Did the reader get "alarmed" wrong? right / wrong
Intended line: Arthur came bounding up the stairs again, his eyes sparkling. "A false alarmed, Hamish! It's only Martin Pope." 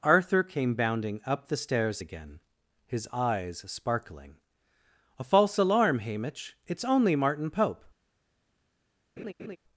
wrong